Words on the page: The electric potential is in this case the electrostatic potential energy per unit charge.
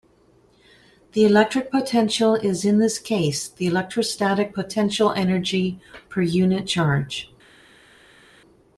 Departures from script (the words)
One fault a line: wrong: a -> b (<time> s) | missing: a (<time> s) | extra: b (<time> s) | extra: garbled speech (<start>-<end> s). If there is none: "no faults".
no faults